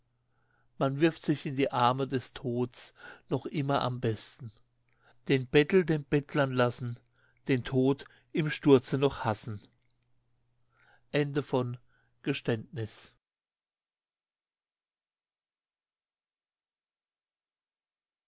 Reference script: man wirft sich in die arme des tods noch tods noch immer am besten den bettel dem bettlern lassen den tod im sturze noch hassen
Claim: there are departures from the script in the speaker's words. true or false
true